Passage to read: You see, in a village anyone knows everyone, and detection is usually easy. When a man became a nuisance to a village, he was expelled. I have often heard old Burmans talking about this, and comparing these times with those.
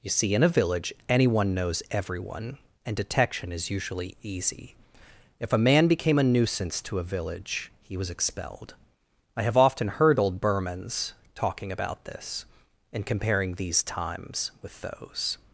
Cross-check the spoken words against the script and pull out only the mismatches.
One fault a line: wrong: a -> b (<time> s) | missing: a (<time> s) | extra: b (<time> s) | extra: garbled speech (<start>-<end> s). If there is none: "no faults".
wrong: When -> If (5.4 s)